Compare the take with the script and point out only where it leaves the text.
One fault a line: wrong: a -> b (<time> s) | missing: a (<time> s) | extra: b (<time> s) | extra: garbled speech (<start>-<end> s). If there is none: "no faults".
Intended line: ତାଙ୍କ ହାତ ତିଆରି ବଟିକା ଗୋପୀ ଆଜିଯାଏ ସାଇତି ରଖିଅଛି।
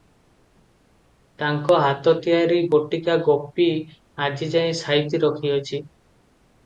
no faults